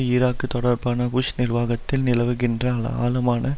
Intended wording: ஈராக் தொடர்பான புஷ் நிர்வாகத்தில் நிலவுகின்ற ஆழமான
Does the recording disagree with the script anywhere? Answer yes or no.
no